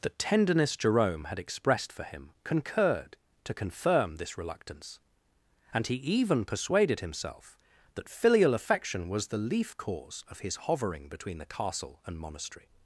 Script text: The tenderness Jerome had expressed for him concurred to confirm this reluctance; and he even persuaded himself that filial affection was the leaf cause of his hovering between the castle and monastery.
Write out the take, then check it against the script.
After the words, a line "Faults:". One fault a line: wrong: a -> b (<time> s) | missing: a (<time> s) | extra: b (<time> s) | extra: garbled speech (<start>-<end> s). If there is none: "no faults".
The tenderness Jerome had expressed for him concurred to confirm this reluctance; and he even persuaded himself that filial affection was the leaf cause of his hovering between the castle and monastery.
Faults:
no faults